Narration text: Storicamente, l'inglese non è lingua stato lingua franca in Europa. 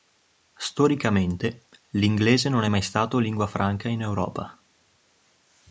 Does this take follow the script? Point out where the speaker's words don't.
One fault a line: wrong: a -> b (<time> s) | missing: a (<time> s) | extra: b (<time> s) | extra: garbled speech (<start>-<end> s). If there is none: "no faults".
wrong: lingua -> mai (2.7 s)